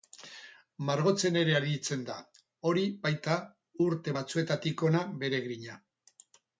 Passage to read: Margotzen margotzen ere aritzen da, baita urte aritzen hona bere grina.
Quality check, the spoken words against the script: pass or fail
fail